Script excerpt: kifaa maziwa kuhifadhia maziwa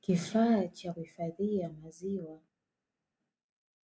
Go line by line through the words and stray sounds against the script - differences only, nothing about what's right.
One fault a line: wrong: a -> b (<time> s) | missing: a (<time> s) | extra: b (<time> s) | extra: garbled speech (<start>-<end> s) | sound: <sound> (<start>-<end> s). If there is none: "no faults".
wrong: maziwa -> cha (0.7 s)